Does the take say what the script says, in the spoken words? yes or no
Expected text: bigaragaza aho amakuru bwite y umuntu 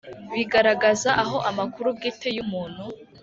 yes